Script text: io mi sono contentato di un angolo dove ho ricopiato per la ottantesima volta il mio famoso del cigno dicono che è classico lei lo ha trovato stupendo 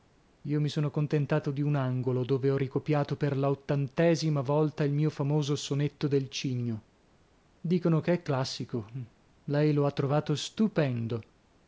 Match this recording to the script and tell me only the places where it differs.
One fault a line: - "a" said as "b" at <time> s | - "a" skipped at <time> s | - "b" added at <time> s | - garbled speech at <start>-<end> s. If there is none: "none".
- "sonetto" added at 5.5 s